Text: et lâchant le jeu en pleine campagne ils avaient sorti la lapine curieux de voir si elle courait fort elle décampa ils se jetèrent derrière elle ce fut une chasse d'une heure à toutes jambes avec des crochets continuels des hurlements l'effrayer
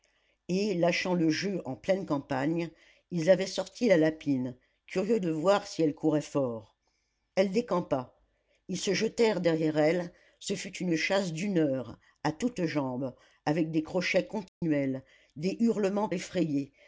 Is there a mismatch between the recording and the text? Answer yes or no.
no